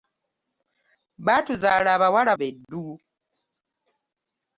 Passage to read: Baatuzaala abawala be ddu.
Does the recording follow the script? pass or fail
pass